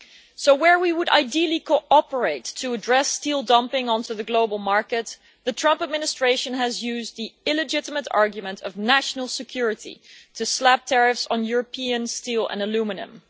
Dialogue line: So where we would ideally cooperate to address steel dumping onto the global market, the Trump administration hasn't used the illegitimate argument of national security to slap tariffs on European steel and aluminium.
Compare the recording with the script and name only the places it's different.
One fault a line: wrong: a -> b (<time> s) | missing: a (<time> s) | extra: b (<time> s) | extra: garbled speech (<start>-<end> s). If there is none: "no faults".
wrong: hasn't -> has (6.5 s)